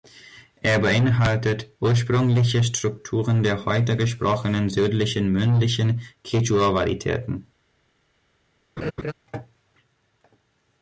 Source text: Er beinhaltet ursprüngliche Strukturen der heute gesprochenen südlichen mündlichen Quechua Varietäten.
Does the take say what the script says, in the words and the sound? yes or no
no